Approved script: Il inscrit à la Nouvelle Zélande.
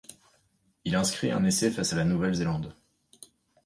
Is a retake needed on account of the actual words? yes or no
yes